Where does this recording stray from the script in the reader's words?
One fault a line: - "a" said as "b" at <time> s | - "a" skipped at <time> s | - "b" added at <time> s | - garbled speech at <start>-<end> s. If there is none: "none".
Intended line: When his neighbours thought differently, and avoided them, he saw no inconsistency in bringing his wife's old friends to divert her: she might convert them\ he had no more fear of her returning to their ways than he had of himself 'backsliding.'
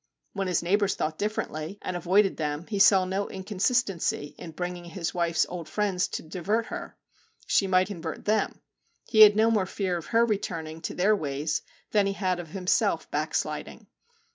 none